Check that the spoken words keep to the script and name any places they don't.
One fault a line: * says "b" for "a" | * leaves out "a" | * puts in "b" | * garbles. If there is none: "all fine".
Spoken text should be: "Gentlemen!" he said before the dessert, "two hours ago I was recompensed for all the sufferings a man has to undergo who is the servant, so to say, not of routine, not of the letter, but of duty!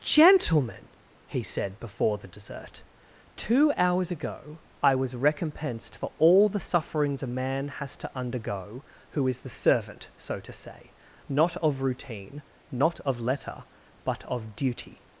* leaves out "the"